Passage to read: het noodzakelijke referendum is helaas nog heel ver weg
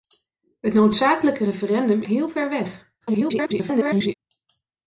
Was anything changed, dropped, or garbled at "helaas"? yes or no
yes